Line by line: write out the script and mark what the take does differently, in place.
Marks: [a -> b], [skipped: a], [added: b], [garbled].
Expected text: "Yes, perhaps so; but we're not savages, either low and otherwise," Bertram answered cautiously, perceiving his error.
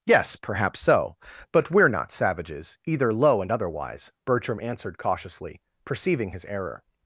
"Yes, perhaps so; but we're not savages, either low and otherwise," Bertram answered cautiously, perceiving his error.